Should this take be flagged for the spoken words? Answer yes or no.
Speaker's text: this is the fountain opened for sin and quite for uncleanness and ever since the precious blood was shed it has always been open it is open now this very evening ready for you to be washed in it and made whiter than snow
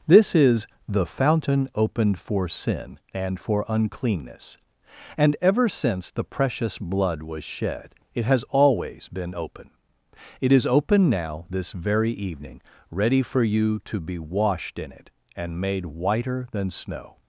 yes